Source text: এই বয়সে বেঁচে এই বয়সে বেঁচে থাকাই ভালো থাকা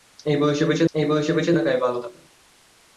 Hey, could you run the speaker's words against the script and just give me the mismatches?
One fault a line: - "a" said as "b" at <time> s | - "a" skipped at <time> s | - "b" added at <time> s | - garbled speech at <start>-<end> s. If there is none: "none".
none